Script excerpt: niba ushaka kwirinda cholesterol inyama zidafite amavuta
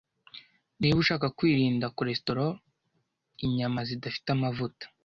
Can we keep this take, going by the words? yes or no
yes